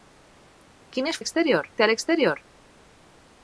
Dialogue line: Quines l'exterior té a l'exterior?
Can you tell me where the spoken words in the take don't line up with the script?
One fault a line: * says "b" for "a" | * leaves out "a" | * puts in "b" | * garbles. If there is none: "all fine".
all fine